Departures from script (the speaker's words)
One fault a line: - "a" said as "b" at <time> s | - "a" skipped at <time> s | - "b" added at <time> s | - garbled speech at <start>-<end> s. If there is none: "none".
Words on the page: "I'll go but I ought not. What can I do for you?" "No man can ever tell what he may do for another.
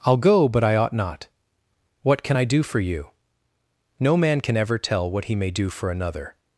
none